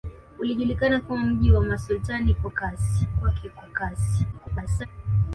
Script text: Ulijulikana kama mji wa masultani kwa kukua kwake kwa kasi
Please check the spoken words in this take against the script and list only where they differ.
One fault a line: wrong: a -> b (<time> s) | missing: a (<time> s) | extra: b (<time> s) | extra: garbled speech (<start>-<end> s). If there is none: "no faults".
wrong: kukua -> kasi (2.5 s)
extra: garbled speech (4.3-4.9 s)